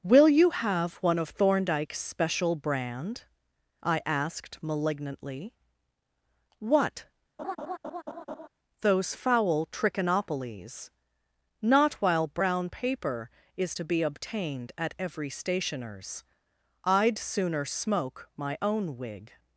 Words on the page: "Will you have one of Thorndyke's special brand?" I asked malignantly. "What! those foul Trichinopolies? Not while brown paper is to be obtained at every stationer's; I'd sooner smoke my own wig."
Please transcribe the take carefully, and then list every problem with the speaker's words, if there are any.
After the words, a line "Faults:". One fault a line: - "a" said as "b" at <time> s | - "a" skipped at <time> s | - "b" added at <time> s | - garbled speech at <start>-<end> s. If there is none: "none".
"Will you have one of Thorndyke's special brand?" I asked malignantly. "What! those foul Trichinopolies? Not while brown paper is to be obtained at every stationer's; I'd sooner smoke my own wig."
Faults:
none